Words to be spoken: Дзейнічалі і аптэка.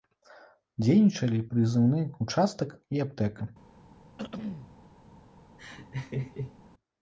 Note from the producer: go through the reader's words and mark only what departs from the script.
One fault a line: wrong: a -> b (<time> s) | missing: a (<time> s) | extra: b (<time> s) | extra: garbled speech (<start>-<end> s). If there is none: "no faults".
extra: прызыўны ўчастак (1.5 s)